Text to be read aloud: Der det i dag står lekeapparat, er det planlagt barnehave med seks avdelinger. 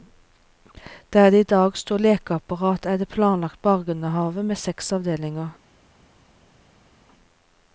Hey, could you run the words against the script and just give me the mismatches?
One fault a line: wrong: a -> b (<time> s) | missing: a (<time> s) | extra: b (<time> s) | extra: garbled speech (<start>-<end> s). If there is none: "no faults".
no faults